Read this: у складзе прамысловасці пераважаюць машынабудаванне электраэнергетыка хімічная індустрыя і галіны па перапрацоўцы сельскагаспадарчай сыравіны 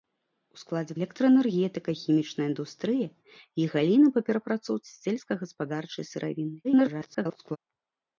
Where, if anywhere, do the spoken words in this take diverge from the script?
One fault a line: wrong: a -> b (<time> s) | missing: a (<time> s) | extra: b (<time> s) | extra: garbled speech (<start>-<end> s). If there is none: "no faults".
missing: прамысловасці пераважаюць машынабудаванне (0.9 s)
extra: garbled speech (6.6-7.6 s)